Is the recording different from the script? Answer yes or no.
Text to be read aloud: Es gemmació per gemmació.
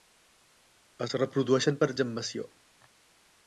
yes